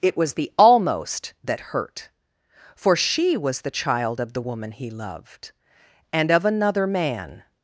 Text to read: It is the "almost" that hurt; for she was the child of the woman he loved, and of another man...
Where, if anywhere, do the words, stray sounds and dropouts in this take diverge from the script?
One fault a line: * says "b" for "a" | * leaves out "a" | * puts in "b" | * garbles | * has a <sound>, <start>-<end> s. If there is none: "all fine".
* says "was" for "is"